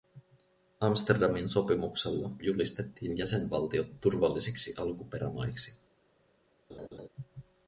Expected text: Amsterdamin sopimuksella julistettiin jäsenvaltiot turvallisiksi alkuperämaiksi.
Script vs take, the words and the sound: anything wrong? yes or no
yes